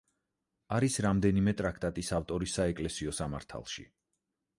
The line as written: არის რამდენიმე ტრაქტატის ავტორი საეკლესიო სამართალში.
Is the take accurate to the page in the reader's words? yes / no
yes